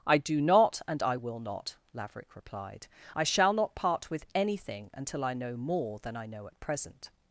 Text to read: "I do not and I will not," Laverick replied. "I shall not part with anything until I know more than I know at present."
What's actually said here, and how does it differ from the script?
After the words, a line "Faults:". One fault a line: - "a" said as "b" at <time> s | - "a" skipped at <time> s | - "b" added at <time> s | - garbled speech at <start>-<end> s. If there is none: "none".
"I do not and I will not," Laverick replied. "I shall not part with anything until I know more than I know at present."
Faults:
none